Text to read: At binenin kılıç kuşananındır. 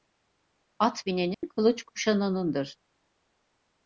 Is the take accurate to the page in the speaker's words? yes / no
yes